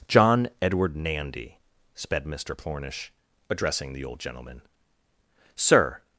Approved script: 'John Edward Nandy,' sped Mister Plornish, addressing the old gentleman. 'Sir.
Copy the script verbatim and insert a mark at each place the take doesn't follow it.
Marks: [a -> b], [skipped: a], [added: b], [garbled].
'John Edward Nandy,' sped Mister Plornish, addressing the old gentleman. 'Sir.